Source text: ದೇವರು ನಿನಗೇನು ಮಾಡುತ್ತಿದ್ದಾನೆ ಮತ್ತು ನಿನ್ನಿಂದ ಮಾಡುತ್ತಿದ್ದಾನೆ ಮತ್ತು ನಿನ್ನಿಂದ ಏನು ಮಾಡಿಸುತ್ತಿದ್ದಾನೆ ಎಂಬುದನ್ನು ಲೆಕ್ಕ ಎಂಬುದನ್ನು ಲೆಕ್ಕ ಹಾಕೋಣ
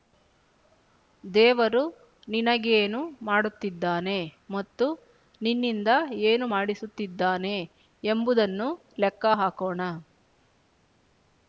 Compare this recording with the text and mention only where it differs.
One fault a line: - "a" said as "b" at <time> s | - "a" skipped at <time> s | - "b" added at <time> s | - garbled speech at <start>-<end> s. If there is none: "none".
- "ಮಾಡುತ್ತಿದ್ದಾನೆ ಮತ್ತು ನಿನ್ನಿಂದ" skipped at 5.9 s
- "ಎಂಬುದನ್ನು ಲೆಕ್ಕ" skipped at 9.2 s